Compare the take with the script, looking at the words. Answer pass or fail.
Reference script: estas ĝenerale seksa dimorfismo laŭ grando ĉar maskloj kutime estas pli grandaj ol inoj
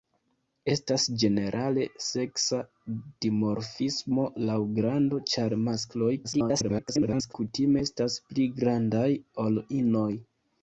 fail